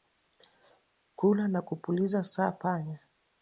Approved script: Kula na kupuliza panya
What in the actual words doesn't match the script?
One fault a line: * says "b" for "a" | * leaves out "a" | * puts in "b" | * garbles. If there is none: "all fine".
* puts in "sa"